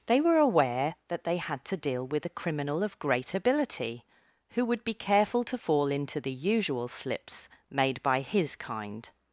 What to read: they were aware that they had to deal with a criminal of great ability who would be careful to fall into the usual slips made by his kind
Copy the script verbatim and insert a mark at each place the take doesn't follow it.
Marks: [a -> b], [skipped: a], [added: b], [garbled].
they were aware that they had to deal with a criminal of great ability who would be careful to fall into the usual slips made by his kind